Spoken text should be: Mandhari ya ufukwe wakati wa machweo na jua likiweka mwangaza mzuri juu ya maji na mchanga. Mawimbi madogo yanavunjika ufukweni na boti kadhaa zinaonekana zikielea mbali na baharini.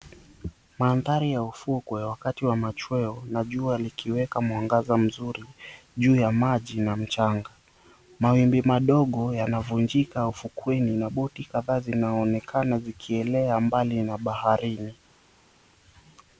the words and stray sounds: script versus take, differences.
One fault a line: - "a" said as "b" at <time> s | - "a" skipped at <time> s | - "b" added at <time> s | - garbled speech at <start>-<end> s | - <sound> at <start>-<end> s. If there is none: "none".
none